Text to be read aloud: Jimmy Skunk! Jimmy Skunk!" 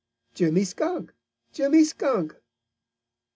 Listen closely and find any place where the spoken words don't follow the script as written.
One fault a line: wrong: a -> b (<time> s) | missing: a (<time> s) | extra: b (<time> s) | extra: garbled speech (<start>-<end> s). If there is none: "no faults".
no faults